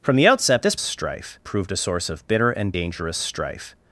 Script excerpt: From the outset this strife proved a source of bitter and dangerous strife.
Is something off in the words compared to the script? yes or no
no